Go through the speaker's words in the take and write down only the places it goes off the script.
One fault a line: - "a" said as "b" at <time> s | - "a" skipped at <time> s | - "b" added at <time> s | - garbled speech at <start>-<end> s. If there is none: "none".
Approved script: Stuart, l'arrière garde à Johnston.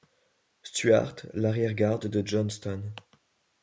- "à" said as "de" at 2.1 s